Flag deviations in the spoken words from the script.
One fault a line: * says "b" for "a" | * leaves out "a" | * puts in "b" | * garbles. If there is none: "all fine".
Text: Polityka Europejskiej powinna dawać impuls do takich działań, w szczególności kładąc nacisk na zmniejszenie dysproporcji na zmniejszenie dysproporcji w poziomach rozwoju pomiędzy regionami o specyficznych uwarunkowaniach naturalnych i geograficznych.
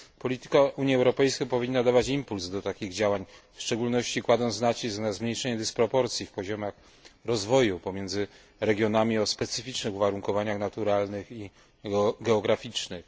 * puts in "Unii"
* leaves out "na zmniejszenie dysproporcji"